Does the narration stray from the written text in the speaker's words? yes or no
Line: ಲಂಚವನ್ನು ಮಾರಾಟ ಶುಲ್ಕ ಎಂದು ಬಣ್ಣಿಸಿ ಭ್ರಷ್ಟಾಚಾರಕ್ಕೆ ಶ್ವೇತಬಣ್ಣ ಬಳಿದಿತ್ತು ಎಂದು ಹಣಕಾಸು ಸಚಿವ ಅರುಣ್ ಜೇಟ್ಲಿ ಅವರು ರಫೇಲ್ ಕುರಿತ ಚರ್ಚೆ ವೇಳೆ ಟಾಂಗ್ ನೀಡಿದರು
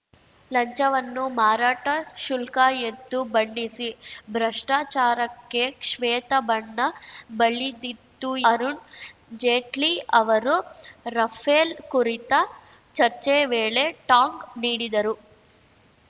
yes